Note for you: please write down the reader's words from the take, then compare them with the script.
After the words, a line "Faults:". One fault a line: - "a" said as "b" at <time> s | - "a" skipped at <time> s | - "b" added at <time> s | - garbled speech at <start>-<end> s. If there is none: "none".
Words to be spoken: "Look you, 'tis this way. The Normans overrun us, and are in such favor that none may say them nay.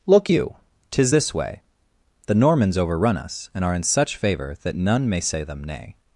"Look you, 'tis this way. The Normans overrun us, and are in such favor that none may say them nay.
Faults:
none